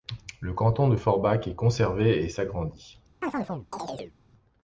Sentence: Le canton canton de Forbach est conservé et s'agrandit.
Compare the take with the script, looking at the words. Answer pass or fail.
fail